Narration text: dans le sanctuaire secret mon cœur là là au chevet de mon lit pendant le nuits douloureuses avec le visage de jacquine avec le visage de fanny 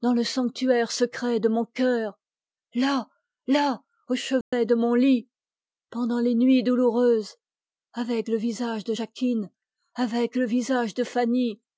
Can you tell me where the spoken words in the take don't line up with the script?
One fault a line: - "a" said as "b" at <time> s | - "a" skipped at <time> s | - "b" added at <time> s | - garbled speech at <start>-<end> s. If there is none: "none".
- "de" added at 1.4 s
- "le" said as "les" at 6.2 s